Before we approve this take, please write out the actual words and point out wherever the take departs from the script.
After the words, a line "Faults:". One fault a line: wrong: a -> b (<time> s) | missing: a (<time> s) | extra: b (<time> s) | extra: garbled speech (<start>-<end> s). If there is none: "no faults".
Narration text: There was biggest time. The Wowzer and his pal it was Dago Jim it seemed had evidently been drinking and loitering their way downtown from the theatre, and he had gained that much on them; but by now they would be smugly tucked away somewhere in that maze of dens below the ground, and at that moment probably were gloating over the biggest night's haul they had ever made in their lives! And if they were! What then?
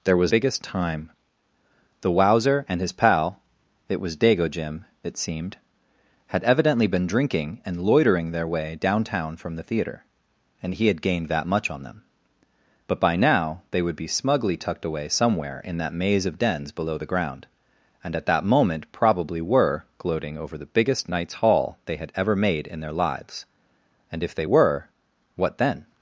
There was biggest time. The Wowzer and his pal it was Dago Jim it seemed had evidently been drinking and loitering their way downtown from the theatre, and he had gained that much on them; but by now they would be smugly tucked away somewhere in that maze of dens below the ground, and at that moment probably were gloating over the biggest night's haul they had ever made in their lives! And if they were! What then?
Faults:
no faults